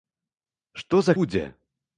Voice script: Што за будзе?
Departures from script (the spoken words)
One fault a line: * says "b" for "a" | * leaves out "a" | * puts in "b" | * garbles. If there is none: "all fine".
all fine